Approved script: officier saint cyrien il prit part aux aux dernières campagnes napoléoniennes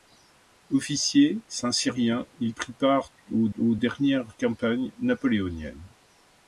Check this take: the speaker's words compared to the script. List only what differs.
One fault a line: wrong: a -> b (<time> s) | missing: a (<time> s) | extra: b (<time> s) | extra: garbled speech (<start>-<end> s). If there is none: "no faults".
no faults